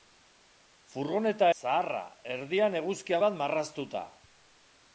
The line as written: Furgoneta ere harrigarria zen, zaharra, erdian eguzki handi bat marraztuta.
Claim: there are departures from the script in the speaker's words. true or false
true